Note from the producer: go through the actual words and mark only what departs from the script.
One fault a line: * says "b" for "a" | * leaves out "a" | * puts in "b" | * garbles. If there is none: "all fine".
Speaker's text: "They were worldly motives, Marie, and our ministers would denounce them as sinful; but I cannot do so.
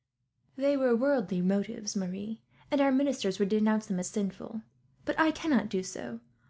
all fine